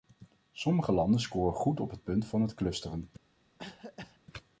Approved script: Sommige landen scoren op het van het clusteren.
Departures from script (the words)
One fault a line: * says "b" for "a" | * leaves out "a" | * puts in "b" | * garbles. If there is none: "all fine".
* puts in "goed"
* puts in "punt"